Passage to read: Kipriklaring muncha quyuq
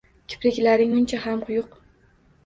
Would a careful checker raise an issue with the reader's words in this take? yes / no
yes